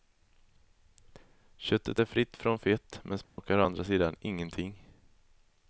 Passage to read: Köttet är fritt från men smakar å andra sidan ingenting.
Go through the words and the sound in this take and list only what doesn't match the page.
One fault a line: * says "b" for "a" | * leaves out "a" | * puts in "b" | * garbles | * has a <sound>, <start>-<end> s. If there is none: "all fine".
* puts in "fett"
* has a dropout, 3.2-3.4 s